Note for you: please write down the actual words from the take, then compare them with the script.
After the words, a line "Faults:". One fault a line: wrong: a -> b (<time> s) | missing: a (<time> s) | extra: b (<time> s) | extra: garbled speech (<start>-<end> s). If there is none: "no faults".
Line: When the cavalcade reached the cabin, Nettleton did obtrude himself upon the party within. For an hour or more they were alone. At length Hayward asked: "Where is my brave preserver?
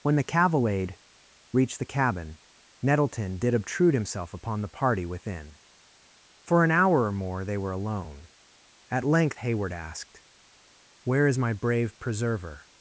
When the cavalcade reached the cabin, Nettleton did obtrude himself upon the party within. For an hour or more they were alone. At length Hayward asked: "Where is my brave preserver?
Faults:
no faults